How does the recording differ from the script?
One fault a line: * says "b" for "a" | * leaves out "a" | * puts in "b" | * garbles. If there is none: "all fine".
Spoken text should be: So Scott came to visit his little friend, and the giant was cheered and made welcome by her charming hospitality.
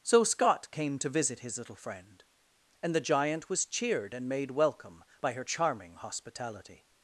all fine